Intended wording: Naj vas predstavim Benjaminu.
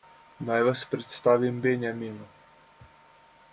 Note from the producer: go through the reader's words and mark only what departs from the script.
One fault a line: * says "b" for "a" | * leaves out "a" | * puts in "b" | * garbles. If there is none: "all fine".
all fine